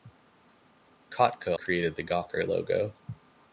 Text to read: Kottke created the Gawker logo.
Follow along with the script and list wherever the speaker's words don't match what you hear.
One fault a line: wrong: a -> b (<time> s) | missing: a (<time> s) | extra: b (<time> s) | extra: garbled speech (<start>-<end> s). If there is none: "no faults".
no faults